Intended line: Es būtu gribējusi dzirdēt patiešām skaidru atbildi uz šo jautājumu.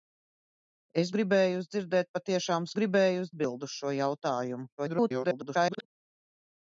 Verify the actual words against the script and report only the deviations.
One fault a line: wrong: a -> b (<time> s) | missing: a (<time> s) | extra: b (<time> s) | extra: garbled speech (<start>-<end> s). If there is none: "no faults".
missing: būtu (1.1 s)
wrong: skaidru -> gribējusi (2.8 s)
extra: garbled speech (4.8-5.9 s)